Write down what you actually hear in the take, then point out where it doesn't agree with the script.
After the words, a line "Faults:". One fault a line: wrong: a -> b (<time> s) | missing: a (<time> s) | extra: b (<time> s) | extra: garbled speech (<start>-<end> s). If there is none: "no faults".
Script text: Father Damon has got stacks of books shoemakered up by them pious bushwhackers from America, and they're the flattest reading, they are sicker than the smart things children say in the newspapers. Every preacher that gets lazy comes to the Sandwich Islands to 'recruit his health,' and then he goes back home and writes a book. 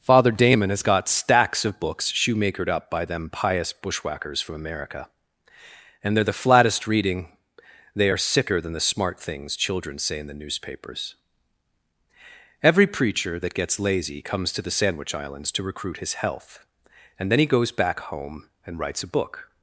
Father Damon has got stacks of books shoemakered up by them pious bushwhackers from America, and they're the flattest reading, they are sicker than the smart things children say in the newspapers. Every preacher that gets lazy comes to the Sandwich Islands to 'recruit his health,' and then he goes back home and writes a book.
Faults:
no faults